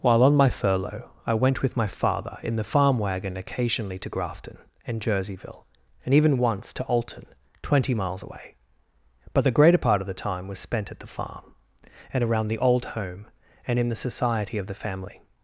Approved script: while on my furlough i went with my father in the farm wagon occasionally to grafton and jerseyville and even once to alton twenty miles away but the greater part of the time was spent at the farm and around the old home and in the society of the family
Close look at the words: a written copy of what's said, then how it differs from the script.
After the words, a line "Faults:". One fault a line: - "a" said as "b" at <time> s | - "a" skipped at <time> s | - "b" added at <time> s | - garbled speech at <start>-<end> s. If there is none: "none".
while on my furlough i went with my father in the farm wagon occasionally to grafton and jerseyville and even once to alton twenty miles away but the greater part of the time was spent at the farm and around the old home and in the society of the family
Faults:
none